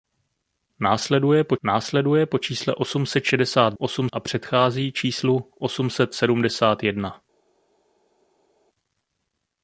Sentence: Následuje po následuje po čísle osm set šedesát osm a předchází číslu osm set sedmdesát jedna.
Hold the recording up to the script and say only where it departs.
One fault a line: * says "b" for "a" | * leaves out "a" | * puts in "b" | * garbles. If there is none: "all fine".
all fine